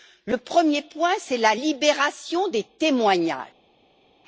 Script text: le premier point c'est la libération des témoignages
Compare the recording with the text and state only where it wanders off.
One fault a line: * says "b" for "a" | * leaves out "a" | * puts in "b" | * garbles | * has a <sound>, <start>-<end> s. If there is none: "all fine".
all fine